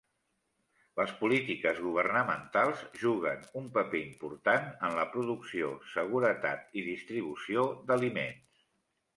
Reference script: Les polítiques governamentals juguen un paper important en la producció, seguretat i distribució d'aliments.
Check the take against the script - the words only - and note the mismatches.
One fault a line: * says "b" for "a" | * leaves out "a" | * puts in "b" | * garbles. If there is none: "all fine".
all fine